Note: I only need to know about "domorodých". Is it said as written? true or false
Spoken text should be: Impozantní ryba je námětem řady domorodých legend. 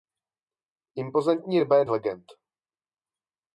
false